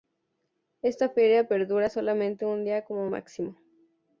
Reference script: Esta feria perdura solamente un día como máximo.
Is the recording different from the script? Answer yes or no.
no